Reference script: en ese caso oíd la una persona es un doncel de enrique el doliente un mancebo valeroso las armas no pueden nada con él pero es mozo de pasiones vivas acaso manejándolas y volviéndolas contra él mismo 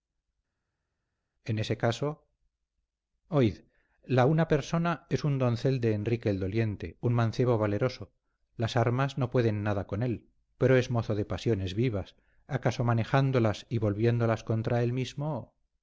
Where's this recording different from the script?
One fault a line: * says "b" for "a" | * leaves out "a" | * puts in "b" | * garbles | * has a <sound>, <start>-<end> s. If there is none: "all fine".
all fine